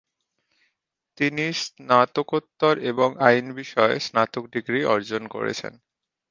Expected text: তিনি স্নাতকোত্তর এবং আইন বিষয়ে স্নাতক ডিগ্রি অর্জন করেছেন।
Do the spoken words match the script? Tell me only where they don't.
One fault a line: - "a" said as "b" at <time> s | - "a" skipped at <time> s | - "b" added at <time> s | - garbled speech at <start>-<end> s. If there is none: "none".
none